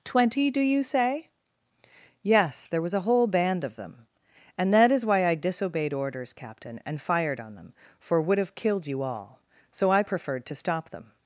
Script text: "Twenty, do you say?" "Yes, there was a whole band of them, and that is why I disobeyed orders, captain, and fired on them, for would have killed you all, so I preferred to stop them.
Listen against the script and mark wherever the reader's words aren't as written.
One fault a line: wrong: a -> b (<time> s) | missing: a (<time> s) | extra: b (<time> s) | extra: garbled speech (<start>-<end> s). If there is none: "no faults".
no faults